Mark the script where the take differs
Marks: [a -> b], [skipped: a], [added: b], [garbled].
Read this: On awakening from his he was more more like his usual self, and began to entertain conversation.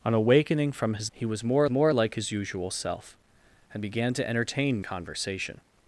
On awakening from his he was more more like his usual self, and began to entertain conversation.